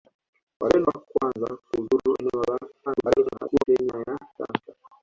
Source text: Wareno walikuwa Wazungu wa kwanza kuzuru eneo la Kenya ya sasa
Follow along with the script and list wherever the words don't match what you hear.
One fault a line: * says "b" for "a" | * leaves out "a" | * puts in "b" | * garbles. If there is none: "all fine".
* leaves out "walikuwa Wazungu"
* garbles